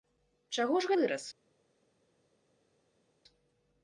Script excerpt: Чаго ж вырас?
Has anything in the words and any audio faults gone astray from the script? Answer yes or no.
no